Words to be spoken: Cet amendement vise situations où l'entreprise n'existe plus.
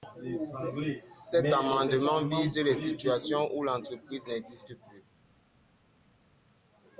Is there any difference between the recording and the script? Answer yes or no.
yes